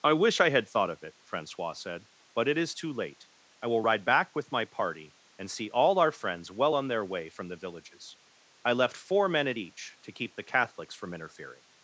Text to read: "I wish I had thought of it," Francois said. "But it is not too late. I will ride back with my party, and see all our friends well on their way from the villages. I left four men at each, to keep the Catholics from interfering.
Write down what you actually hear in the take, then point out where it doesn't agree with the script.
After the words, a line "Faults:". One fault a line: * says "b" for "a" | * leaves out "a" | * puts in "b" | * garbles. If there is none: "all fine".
"I wish I had thought of it," Francois said. "But it is too late. I will ride back with my party, and see all our friends well on their way from the villages. I left four men at each, to keep the Catholics from interfering.
Faults:
* leaves out "not"